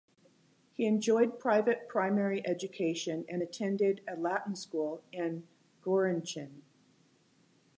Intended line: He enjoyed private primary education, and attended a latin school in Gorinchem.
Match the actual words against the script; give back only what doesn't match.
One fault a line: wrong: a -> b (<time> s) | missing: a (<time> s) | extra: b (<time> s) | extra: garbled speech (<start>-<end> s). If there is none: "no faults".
no faults